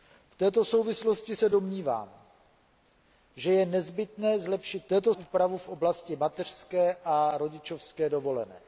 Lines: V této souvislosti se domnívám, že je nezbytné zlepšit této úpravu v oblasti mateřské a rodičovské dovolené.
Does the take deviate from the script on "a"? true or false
false